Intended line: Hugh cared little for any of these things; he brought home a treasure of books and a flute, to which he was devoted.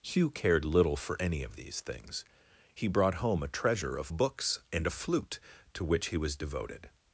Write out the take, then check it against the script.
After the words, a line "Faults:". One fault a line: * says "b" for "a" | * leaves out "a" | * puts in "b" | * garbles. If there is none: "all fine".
Hugh cared little for any of these things; he brought home a treasure of books and a flute, to which he was devoted.
Faults:
all fine